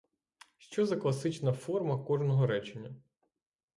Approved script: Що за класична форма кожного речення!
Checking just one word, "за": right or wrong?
right